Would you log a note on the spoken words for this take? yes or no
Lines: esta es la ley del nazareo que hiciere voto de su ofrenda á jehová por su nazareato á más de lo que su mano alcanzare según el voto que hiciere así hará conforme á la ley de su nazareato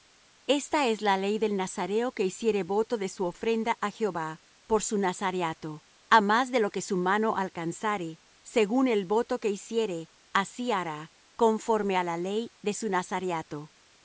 no